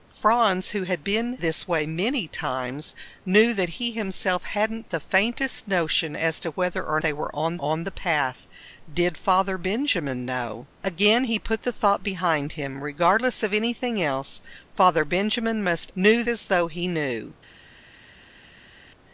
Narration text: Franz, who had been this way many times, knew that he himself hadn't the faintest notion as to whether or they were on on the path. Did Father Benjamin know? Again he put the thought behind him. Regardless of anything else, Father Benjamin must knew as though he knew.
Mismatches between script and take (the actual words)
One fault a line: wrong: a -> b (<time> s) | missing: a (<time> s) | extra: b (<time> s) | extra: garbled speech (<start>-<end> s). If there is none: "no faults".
no faults